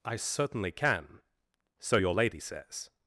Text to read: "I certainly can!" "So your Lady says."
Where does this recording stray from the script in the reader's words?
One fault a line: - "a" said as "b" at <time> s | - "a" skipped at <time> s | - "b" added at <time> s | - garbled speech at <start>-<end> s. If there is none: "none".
none